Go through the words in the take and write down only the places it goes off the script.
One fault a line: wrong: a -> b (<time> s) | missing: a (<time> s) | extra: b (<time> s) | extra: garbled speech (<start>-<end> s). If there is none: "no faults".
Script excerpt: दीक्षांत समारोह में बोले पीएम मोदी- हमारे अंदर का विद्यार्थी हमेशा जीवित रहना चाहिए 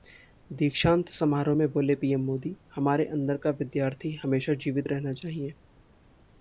no faults